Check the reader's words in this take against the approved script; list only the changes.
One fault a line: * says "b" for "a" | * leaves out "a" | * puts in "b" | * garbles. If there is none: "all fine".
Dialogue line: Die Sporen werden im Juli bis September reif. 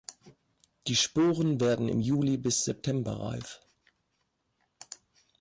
all fine